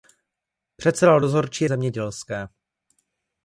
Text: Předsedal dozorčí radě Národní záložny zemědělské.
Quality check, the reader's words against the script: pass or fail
fail